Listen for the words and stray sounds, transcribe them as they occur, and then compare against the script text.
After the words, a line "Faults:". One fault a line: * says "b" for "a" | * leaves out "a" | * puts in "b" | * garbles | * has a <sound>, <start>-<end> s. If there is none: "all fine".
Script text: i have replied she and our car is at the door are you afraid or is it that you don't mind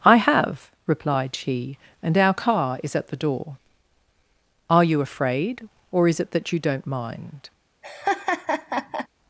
i have replied she and our car is at the door are you afraid or is it that you don't mind
Faults:
* has a laugh, 7.8-9.1 s